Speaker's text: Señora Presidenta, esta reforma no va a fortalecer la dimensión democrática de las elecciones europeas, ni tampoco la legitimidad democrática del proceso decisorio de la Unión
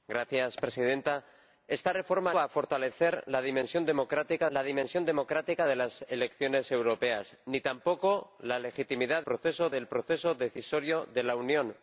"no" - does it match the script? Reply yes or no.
no